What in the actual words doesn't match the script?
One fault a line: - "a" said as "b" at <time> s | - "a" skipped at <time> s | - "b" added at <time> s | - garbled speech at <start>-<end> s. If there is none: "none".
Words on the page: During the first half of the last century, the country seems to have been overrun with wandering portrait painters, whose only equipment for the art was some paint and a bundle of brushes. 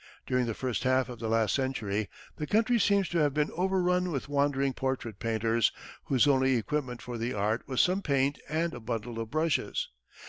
none